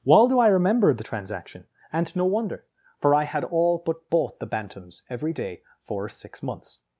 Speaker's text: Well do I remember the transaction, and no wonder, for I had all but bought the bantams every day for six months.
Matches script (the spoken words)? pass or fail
pass